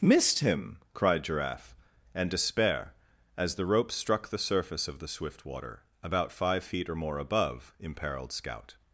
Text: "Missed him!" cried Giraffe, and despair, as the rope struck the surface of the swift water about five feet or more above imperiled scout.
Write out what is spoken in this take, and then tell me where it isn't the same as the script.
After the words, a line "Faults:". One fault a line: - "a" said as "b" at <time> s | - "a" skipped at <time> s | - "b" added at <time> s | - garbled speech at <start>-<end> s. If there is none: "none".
"Missed him!" cried Giraffe, and despair, as the rope struck the surface of the swift water about five feet or more above imperiled scout.
Faults:
none